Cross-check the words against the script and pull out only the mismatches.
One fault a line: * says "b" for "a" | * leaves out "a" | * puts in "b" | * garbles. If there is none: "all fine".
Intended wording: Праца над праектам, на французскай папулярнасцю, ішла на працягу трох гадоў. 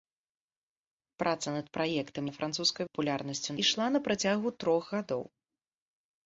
all fine